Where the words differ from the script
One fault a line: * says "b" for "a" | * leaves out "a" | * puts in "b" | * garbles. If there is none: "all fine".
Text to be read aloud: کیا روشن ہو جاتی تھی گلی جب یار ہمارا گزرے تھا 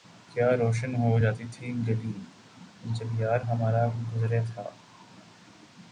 all fine